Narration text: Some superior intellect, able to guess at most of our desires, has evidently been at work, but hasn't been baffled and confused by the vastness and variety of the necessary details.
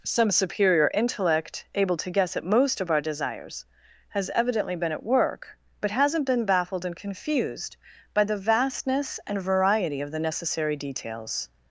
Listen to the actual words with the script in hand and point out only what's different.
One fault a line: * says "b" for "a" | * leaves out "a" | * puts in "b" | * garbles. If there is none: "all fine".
all fine